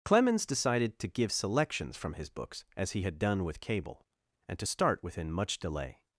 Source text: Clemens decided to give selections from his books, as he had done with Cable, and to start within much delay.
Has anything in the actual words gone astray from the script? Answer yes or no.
no